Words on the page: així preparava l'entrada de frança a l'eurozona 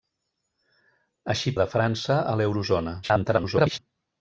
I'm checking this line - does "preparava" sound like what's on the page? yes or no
no